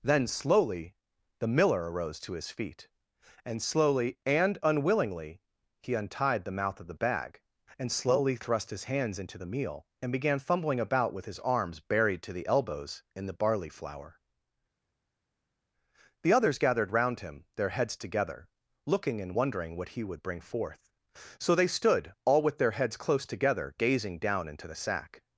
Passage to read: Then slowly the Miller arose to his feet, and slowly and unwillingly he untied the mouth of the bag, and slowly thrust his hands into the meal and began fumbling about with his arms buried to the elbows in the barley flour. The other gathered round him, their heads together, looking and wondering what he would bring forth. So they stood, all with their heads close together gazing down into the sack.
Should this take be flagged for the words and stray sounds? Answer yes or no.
yes